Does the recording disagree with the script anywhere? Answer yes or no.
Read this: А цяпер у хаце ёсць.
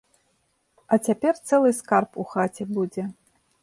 yes